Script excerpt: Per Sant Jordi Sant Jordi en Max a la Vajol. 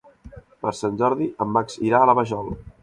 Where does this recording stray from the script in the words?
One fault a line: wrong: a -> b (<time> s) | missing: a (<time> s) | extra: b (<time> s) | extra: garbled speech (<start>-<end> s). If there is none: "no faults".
missing: Sant Jordi (1.3 s)
extra: irà (1.9 s)